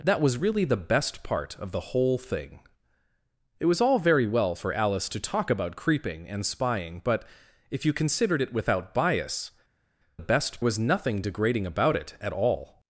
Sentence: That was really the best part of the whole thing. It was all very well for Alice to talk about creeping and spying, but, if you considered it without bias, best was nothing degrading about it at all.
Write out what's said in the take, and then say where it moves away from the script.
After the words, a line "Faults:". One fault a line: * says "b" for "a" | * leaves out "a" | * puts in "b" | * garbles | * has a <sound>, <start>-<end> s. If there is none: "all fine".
That was really the best part of the whole thing. It was all very well for Alice to talk about creeping and spying, but, if you considered it without bias, best was nothing degrading about it at all.
Faults:
all fine